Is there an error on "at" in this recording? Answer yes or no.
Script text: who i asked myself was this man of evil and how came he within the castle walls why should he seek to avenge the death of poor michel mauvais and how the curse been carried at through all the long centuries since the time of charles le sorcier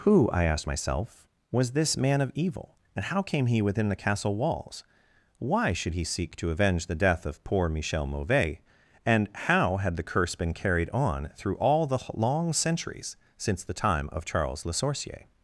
yes